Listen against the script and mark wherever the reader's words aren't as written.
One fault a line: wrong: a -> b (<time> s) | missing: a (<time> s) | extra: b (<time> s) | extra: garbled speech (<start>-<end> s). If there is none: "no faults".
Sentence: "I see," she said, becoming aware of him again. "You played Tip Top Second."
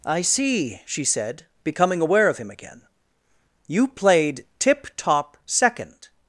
no faults